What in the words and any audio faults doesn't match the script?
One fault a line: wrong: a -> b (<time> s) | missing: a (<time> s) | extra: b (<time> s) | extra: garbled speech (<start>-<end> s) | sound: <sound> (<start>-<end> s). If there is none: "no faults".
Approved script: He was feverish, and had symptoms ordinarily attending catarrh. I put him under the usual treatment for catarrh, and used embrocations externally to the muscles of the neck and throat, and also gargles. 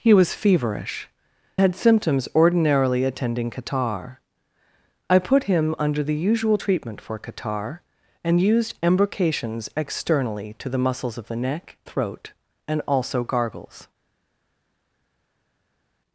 missing: and (1.1 s)
missing: and (11.8 s)